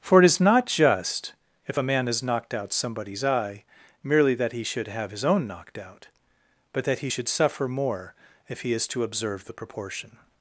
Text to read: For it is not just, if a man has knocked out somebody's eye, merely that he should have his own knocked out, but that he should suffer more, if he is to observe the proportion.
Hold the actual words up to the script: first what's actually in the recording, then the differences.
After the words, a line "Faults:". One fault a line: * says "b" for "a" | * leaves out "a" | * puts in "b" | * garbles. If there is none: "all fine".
For it is not just, if a man has knocked out somebody's eye, merely that he should have his own knocked out, but that he should suffer more, if he is to observe the proportion.
Faults:
all fine